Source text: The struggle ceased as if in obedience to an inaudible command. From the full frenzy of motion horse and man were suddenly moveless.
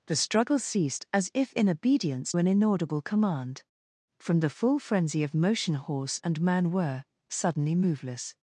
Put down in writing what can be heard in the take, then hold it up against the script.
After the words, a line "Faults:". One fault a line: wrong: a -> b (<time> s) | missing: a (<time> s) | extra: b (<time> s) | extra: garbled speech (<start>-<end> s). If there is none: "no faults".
The struggle ceased as if in obedience an inaudible command. From the full frenzy of motion horse and man were suddenly moveless.
Faults:
missing: to (2.3 s)